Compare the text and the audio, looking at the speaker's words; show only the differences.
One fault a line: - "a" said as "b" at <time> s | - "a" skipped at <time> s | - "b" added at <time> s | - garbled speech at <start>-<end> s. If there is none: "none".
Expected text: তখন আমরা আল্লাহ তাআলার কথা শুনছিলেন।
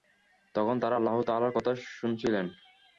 - "আমরা" said as "তারা" at 0.8 s